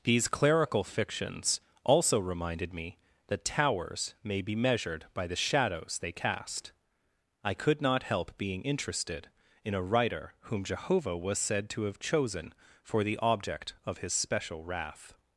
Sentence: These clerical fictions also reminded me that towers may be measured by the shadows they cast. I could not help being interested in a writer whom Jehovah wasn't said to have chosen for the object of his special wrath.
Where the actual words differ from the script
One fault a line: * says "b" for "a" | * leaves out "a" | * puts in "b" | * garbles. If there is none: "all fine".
* says "was" for "wasn't"